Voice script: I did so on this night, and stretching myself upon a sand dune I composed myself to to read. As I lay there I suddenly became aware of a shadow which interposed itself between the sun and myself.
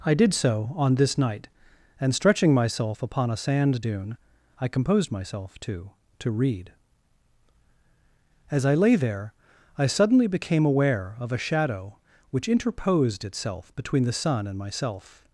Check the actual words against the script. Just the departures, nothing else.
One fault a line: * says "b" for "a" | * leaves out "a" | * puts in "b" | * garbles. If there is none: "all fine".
all fine